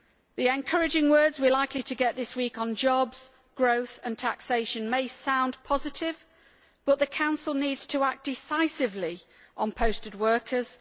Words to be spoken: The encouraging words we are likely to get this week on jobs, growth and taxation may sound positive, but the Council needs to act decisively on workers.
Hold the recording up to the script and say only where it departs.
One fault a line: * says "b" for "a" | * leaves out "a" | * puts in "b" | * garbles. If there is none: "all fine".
* puts in "posted"